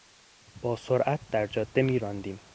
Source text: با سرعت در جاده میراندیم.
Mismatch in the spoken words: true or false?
false